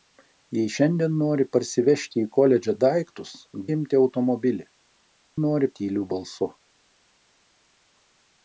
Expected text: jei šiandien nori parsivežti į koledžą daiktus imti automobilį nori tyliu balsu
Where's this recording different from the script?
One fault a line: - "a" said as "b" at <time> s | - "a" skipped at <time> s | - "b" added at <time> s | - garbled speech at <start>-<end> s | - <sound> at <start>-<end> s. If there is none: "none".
none